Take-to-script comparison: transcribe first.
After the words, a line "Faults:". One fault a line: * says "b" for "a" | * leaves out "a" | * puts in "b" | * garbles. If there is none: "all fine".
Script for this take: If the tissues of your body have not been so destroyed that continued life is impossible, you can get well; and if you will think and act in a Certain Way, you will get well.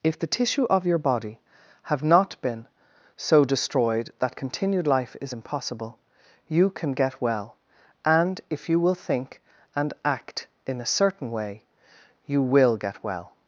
If the tissue of your body have not been so destroyed that continued life is impossible, you can get well; and if you will think and act in a Certain Way, you will get well.
Faults:
* says "tissue" for "tissues"